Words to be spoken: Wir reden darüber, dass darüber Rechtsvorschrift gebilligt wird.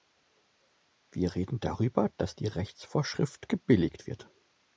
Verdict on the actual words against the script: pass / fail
fail